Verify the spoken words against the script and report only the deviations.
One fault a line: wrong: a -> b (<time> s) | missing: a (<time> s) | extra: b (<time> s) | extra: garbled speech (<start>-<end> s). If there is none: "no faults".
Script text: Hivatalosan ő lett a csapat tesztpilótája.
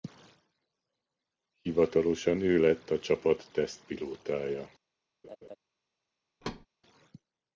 no faults